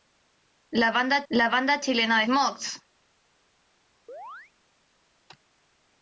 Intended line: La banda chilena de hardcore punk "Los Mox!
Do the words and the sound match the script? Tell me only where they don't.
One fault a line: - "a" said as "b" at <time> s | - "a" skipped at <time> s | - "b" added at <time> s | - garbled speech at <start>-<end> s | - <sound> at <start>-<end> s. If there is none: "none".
- "la banda" added at 1.3 s
- "hardcore punk Los" skipped at 2.3 s
- chirp at 4.1-4.5 s